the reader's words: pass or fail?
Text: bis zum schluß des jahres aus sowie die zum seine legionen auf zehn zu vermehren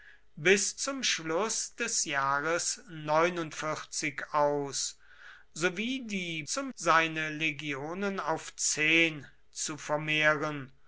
pass